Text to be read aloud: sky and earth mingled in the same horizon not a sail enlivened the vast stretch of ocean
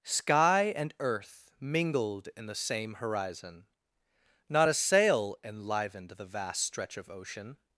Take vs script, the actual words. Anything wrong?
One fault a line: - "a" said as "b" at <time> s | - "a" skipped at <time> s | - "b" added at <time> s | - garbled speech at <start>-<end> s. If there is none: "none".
none